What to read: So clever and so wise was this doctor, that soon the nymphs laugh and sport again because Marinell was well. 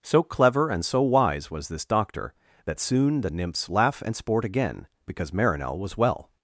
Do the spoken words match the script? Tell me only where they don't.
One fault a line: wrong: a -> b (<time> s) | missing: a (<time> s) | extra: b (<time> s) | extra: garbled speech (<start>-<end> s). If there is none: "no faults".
no faults